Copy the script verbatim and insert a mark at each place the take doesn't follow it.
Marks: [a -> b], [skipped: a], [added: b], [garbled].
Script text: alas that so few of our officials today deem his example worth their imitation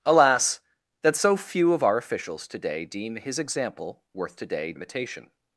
alas that so few of our officials today deem his example worth [their -> today] imitation